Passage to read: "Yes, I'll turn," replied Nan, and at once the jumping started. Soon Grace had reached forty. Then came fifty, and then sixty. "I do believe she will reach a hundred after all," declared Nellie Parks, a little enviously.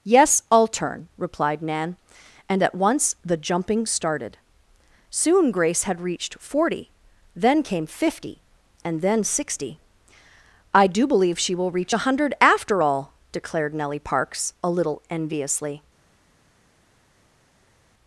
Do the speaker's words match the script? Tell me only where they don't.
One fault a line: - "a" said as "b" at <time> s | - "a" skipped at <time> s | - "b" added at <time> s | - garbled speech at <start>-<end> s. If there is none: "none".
none